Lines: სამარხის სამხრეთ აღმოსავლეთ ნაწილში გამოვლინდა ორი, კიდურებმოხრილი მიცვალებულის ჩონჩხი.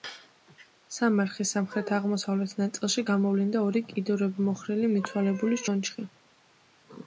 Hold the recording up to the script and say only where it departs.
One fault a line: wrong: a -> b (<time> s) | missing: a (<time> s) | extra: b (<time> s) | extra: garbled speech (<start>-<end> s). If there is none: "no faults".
no faults